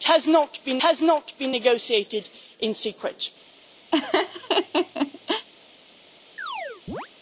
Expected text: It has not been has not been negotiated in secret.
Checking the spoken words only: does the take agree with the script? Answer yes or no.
yes